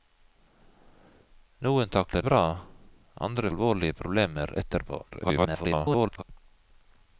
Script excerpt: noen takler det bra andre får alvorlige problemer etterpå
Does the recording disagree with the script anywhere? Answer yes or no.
yes